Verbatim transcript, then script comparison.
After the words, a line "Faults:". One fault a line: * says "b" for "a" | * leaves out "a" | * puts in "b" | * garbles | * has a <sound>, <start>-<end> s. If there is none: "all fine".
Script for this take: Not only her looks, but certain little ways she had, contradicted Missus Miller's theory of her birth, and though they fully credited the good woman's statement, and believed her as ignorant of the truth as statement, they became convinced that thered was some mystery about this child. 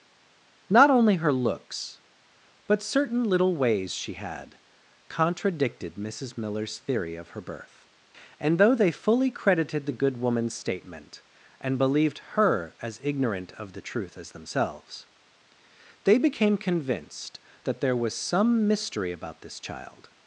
Not only her looks, but certain little ways she had, contradicted Missus Miller's theory of her birth, and though they fully credited the good woman's statement, and believed her as ignorant of the truth as themselves, they became convinced that there was some mystery about this child.
Faults:
* says "themselves" for "statement"
* says "there" for "thered"